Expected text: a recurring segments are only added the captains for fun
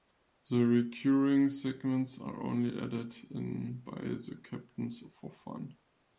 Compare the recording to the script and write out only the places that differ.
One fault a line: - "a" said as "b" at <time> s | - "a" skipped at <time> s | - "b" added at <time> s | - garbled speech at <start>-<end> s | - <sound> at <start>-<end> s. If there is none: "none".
- "a" said as "the" at 0.5 s
- "in by" added at 3.3 s